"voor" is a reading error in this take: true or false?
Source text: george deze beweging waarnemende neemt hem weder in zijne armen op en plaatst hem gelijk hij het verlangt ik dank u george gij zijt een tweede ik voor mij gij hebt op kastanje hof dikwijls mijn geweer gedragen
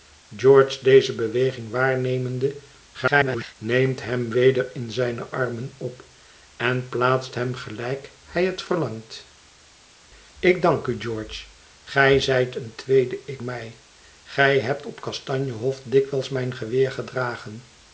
true